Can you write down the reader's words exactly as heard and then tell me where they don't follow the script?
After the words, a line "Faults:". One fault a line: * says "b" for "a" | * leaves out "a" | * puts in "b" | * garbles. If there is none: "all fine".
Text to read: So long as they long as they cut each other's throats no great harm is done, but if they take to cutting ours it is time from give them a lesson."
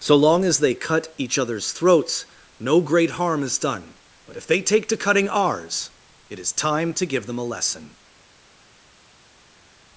So long as they cut each other's throats no great harm is done, but if they take to cutting ours it is time to give them a lesson."
Faults:
* leaves out "long as they"
* says "to" for "from"